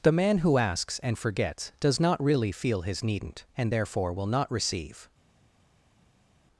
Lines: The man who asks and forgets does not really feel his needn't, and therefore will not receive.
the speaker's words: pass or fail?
pass